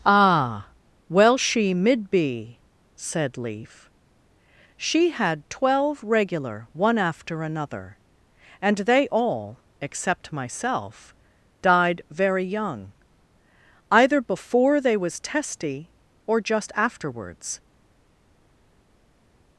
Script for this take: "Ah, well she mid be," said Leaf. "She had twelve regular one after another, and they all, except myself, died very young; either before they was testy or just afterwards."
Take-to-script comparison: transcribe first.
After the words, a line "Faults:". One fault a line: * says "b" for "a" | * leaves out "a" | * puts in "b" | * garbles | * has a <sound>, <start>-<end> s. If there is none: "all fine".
"Ah, well she mid be," said Leaf. "She had twelve regular one after another, and they all, except myself, died very young; either before they was testy or just afterwards."
Faults:
all fine